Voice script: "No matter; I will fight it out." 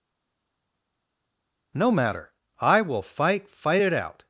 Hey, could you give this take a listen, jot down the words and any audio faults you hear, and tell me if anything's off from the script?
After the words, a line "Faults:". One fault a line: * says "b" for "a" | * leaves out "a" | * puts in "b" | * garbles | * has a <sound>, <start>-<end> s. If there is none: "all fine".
"No matter; I will fight fight it out."
Faults:
* puts in "fight"